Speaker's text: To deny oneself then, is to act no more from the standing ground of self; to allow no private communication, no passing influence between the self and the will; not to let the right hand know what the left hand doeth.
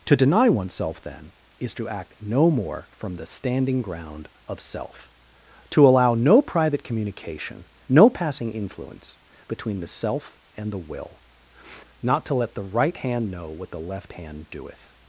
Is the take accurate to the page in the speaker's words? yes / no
yes